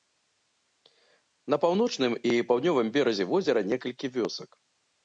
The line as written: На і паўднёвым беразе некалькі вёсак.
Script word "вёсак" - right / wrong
right